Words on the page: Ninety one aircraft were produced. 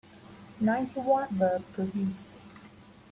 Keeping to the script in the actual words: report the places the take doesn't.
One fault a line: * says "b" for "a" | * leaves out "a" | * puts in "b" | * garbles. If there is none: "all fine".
* leaves out "aircraft"